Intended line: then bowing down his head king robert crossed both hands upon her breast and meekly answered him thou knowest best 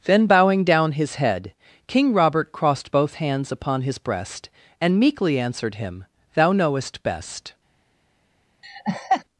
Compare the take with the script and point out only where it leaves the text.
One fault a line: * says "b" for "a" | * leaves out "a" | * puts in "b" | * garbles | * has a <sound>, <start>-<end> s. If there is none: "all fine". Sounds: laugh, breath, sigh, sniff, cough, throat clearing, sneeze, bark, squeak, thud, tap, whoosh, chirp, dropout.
* says "his" for "her"
* has a laugh, 8.6-9.2 s